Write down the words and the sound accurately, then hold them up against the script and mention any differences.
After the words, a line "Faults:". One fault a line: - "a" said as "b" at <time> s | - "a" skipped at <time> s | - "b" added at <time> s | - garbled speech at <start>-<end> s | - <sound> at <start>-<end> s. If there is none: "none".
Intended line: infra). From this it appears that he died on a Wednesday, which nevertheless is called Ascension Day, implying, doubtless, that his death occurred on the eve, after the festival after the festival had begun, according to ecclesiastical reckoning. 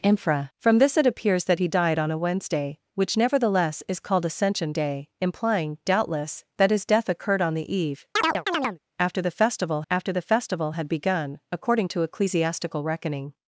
infra). From this it appears that he died on a Wednesday, which nevertheless is called Ascension Day, implying, doubtless, that his death occurred on the eve, after the festival after the festival had begun, according to ecclesiastical reckoning.
Faults:
- chirp at 8.2-8.8 s